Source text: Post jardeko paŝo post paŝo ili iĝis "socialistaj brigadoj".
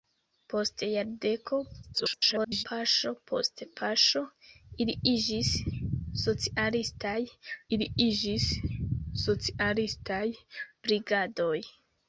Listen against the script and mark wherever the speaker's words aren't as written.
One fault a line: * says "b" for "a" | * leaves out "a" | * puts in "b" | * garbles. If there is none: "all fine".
* garbles
* puts in "ili iĝis socialistaj"